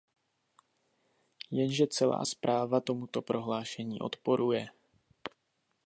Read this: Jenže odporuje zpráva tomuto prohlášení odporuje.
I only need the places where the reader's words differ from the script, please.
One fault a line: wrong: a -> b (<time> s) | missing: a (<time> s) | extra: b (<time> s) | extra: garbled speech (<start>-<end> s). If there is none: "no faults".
wrong: odporuje -> celá (1.9 s)